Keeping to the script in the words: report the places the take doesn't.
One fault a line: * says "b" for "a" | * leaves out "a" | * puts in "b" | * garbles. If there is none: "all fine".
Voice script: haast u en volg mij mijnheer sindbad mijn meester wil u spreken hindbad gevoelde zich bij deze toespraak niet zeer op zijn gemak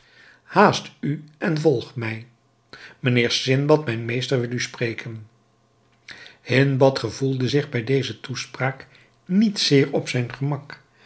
all fine